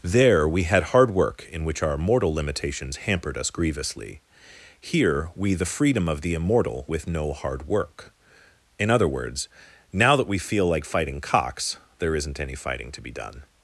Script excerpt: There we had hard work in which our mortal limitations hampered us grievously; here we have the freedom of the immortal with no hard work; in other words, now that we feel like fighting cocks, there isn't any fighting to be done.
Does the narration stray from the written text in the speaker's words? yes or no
yes